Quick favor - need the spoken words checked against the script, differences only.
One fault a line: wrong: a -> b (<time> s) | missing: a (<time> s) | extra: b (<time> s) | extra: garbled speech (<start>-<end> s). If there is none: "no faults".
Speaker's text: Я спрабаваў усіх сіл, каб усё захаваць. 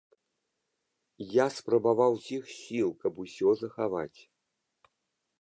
no faults